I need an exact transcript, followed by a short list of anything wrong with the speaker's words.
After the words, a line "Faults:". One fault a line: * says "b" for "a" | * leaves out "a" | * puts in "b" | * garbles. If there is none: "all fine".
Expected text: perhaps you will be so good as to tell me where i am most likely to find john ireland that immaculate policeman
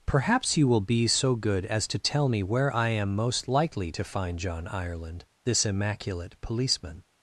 perhaps you will be so good as to tell me where i am most likely to find john ireland this immaculate policeman
Faults:
* says "this" for "that"